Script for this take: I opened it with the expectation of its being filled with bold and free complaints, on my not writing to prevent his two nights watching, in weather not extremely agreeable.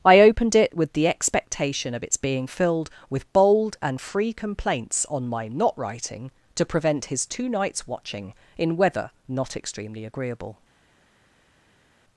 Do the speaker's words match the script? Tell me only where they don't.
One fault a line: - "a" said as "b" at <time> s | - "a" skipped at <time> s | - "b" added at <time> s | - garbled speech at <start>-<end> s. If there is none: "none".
none